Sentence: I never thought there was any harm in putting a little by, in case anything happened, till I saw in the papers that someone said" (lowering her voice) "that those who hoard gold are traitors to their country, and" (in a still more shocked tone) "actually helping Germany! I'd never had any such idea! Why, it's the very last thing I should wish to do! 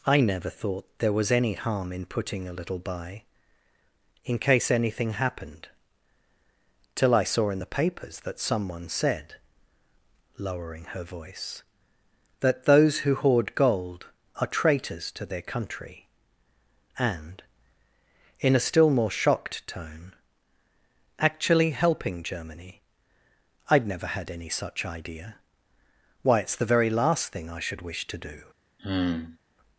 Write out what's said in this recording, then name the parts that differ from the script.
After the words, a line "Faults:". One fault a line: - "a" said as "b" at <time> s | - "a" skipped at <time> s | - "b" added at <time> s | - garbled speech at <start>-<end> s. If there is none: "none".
I never thought there was any harm in putting a little by, in case anything happened, till I saw in the papers that someone said" (lowering her voice) "that those who hoard gold are traitors to their country, and" (in a still more shocked tone) "actually helping Germany! I'd never had any such idea! Why, it's the very last thing I should wish to do!
Faults:
none